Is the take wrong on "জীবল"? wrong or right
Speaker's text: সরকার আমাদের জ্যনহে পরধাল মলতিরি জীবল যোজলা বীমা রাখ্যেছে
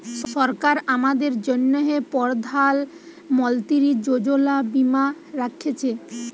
wrong